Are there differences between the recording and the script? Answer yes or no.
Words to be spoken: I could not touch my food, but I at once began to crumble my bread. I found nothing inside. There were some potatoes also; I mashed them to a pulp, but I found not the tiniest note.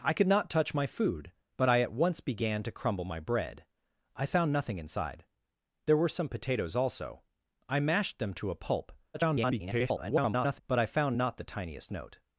yes